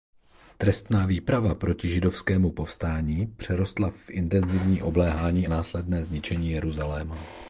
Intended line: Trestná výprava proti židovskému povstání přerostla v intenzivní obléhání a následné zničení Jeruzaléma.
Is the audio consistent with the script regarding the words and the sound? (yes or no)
no